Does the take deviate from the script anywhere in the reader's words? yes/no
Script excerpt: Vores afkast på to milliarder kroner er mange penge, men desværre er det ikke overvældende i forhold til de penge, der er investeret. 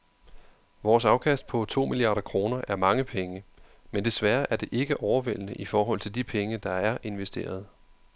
no